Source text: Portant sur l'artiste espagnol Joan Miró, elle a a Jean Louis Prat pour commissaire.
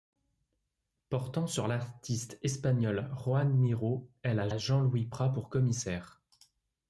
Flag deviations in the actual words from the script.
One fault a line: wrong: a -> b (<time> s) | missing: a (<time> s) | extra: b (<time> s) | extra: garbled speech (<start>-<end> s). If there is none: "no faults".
no faults